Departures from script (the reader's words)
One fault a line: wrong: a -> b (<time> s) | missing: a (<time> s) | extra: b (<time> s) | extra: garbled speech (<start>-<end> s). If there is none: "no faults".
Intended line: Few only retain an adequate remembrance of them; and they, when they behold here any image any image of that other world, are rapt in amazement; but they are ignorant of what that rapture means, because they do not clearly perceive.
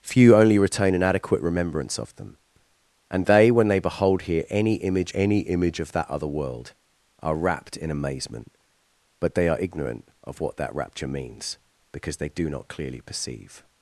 no faults